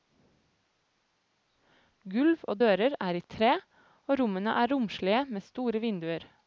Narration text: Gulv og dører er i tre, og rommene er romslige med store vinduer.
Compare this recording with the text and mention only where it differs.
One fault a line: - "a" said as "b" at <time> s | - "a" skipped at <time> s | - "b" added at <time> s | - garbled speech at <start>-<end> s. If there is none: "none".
none